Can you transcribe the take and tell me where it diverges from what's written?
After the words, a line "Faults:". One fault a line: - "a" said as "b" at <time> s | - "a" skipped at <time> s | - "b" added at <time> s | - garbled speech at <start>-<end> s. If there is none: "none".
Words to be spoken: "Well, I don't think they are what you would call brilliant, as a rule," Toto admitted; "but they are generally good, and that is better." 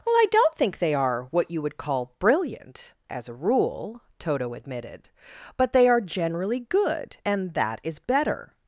"Well, I don't think they are what you would call brilliant, as a rule," Toto admitted; "but they are generally good, and that is better."
Faults:
none